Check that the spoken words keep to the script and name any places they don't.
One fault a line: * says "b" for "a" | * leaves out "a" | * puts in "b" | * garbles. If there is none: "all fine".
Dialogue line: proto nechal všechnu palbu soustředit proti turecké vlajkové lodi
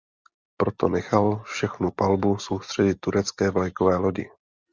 * leaves out "proti"